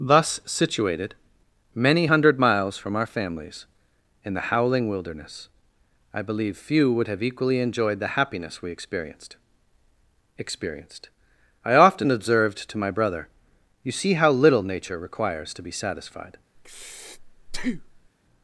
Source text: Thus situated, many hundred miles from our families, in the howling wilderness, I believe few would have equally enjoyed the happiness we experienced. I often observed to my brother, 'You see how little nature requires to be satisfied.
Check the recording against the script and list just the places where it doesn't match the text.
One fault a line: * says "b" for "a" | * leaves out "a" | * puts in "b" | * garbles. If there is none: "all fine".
* puts in "experienced"